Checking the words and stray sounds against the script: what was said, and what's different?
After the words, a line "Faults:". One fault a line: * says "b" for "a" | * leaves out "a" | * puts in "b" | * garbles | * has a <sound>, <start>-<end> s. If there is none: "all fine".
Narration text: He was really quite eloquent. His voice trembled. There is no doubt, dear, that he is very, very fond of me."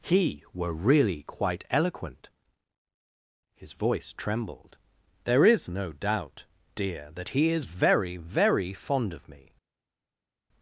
He were really quite eloquent. His voice trembled. There is no doubt, dear, that he is very, very fond of me."
Faults:
* says "were" for "was"